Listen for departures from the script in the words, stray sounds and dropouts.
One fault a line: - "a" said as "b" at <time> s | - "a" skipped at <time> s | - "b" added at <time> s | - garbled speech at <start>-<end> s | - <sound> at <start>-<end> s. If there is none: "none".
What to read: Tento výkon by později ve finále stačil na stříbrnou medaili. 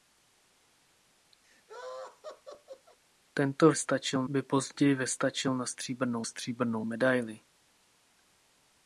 - laugh at 1.4-3.0 s
- "výkon" said as "stačil" at 3.7 s
- "finále" skipped at 5.1 s
- "stříbrnou" added at 6.2 s